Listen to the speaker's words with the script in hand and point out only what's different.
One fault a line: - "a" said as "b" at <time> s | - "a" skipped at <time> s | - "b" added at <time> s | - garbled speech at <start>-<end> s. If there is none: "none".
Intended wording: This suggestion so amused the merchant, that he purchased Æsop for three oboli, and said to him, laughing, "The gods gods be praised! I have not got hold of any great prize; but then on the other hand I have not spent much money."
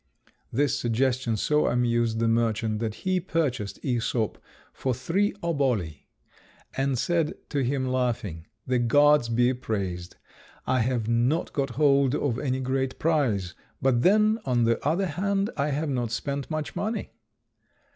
- "gods" skipped at 9.3 s